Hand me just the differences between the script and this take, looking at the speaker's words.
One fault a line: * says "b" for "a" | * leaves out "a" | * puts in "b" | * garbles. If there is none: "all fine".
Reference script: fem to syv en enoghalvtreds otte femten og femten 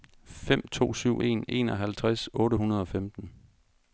* says "hundrede" for "femten"